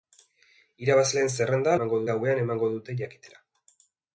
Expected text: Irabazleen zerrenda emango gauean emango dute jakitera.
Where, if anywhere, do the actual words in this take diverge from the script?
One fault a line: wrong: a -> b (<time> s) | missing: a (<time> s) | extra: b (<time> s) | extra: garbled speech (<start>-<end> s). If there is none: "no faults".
no faults